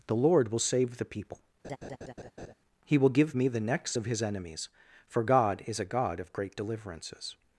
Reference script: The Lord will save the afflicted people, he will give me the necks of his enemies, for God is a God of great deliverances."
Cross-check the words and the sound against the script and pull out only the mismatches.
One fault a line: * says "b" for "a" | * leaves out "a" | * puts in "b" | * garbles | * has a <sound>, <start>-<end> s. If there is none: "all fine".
* leaves out "afflicted"
* has a laugh, 1.6-2.5 s